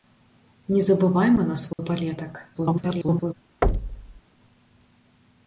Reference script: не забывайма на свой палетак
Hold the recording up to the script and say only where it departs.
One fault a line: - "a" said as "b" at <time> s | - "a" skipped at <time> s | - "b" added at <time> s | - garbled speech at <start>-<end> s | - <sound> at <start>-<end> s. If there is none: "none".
- dropout at 1.7-1.8 s
- garbled speech at 2.5-3.3 s
- thud at 3.6-4.2 s